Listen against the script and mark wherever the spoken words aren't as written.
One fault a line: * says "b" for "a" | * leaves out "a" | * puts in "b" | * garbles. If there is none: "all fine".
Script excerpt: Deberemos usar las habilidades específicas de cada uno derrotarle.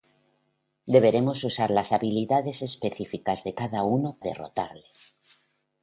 all fine